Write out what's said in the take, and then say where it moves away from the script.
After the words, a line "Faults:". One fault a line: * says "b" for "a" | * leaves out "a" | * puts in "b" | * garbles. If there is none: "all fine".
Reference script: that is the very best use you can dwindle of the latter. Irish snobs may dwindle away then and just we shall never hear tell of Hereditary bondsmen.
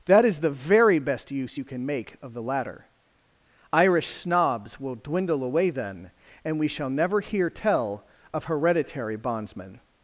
that is the very best use you can make of the latter. Irish snobs will dwindle away then and we shall never hear tell of Hereditary bondsmen.
Faults:
* says "make" for "dwindle"
* says "will" for "may"
* leaves out "just"